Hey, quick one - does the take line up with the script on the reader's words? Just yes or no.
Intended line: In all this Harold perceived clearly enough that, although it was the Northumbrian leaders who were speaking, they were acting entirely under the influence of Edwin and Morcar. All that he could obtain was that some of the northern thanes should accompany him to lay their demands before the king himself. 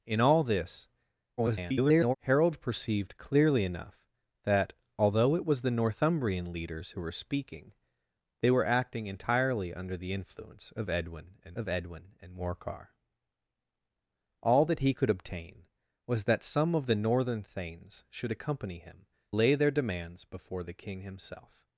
no